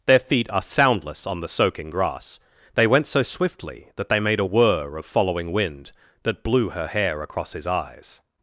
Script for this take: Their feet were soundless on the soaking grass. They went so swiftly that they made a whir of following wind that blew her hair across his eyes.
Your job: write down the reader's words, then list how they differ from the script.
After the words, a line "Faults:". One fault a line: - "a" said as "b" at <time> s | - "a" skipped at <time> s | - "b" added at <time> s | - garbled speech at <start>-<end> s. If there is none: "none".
Their feet are soundless on the soaking grass. They went so swiftly that they made a whir of following wind that blew her hair across his eyes.
Faults:
- "were" said as "are" at 0.5 s